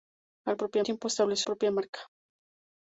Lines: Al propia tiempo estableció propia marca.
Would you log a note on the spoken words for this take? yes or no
no